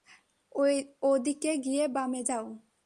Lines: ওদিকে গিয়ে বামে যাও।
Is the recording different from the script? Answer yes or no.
no